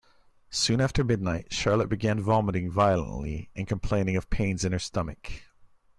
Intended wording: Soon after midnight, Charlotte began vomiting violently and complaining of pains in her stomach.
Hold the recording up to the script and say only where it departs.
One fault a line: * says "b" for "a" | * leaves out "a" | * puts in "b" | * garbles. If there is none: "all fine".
all fine